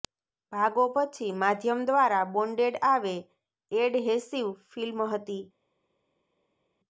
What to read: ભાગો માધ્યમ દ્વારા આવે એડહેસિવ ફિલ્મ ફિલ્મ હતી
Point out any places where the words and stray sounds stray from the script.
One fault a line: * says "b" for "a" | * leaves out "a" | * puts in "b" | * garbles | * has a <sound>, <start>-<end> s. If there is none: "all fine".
* puts in "પછી"
* puts in "બોન્ડેડ"
* leaves out "ફિલ્મ"